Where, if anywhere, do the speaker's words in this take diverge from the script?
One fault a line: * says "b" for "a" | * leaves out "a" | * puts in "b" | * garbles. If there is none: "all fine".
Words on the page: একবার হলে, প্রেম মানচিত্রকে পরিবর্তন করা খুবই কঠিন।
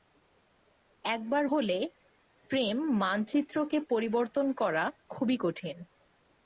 all fine